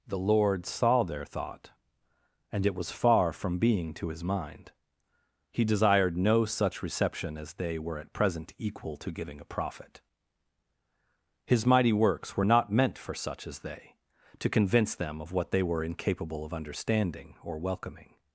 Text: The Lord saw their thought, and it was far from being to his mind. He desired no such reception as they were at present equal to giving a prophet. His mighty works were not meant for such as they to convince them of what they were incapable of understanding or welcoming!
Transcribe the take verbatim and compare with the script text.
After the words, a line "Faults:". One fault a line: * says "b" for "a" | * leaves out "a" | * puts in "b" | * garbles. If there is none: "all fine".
The Lord saw their thought, and it was far from being to his mind. He desired no such reception as they were at present equal to giving a prophet. His mighty works were not meant for such as they to convince them of what they were incapable of understanding or welcoming!
Faults:
all fine